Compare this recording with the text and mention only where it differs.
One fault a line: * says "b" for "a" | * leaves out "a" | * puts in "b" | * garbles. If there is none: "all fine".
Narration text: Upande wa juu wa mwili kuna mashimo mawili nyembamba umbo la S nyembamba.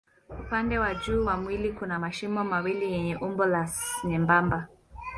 * says "yenye" for "nyembamba"